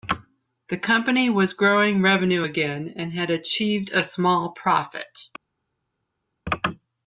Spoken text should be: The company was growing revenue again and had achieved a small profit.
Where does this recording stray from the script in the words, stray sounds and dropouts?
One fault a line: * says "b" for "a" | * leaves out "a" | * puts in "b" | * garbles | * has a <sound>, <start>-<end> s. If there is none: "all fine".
all fine